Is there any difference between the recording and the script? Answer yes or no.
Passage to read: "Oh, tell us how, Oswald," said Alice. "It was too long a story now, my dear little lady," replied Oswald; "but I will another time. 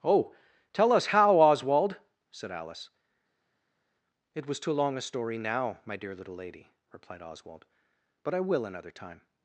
no